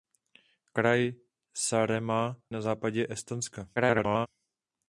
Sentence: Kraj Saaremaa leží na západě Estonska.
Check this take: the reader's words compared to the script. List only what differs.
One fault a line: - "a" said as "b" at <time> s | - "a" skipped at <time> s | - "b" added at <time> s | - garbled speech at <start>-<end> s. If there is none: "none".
- "leží" skipped at 2.4 s
- garbled speech at 3.8-4.3 s